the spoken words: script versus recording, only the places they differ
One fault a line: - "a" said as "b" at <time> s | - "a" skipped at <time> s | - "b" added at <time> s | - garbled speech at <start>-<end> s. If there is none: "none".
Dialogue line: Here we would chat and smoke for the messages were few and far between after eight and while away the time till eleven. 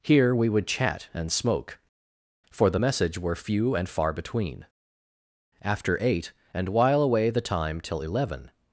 - "messages" said as "message" at 2.8 s